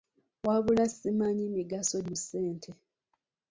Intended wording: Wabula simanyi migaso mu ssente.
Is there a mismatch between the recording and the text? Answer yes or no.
no